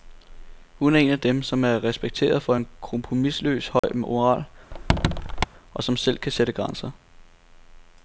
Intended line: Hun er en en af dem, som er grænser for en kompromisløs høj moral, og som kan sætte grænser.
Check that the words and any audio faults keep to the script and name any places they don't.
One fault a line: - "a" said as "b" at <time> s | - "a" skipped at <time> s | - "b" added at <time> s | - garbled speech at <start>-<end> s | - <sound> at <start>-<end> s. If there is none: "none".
- "en" skipped at 1.1 s
- "grænser" said as "respekteret" at 1.8 s
- dropout at 3.8-3.8 s
- squeak at 4.7-5.5 s
- "selv" added at 6.0 s